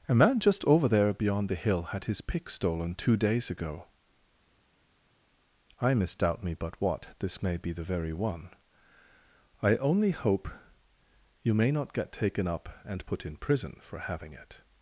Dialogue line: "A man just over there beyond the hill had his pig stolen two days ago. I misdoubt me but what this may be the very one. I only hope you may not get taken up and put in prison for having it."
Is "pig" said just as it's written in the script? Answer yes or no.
no